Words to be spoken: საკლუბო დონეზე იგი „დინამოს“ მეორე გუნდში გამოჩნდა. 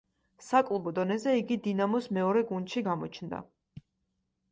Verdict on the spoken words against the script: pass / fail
pass